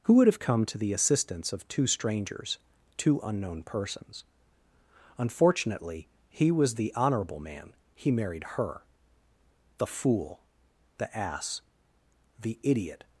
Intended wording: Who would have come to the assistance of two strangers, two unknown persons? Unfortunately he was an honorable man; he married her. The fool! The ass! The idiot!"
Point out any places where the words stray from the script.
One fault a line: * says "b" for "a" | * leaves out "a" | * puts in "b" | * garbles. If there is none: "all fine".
* says "the" for "an"